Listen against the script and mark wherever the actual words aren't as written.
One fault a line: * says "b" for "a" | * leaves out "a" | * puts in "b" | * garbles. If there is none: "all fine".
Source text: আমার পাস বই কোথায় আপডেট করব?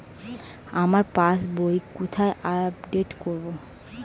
all fine